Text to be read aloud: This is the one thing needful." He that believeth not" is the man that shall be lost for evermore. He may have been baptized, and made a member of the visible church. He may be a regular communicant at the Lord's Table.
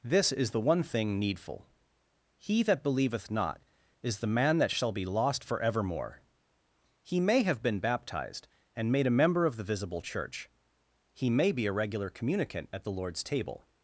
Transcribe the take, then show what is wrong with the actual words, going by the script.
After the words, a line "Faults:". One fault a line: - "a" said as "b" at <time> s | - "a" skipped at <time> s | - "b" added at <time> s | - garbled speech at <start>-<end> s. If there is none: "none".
This is the one thing needful." He that believeth not" is the man that shall be lost for evermore. He may have been baptized, and made a member of the visible church. He may be a regular communicant at the Lord's Table.
Faults:
none